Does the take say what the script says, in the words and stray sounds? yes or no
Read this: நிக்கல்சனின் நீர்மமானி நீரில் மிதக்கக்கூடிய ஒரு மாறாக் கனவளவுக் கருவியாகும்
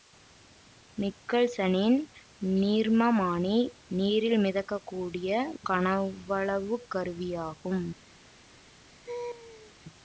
no